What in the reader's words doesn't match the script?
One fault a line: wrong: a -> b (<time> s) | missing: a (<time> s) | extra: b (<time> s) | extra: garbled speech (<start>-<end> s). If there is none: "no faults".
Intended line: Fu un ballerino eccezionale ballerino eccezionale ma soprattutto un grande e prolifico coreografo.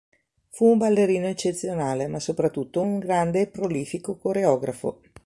missing: ballerino eccezionale (2.1 s)